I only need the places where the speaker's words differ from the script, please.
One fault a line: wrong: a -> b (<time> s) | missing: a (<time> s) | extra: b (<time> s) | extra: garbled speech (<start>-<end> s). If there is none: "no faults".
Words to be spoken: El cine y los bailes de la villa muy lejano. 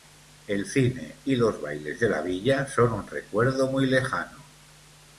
extra: son un recuerdo (2.6 s)